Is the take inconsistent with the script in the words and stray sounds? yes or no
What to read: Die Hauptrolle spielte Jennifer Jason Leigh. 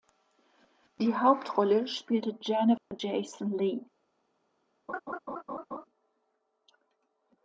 yes